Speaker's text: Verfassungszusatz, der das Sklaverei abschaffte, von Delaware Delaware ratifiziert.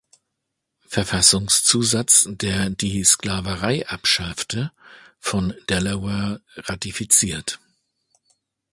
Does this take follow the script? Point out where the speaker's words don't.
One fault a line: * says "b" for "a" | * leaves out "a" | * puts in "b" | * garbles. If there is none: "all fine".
* says "die" for "das"
* leaves out "Delaware"